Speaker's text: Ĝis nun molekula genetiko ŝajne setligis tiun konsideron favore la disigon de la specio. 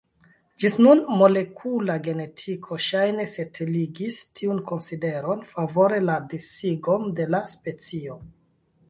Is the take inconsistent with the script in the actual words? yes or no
no